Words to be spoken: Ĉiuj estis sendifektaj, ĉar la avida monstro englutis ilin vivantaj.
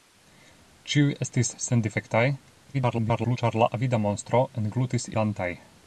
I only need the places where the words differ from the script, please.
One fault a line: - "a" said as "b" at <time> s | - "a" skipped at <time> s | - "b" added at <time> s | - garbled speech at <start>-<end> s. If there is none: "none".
- garbled speech at 2.7-3.4 s
- "ilin" skipped at 5.1 s